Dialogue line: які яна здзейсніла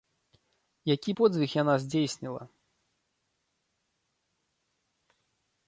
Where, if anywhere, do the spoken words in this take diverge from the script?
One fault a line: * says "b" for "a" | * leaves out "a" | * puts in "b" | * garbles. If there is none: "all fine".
* puts in "подзвіг"